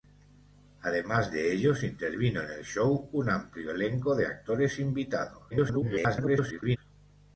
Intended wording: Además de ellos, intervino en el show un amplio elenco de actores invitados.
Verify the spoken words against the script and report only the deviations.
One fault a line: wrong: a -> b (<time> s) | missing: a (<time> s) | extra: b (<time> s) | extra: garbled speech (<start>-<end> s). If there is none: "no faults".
extra: garbled speech (5.5-6.8 s)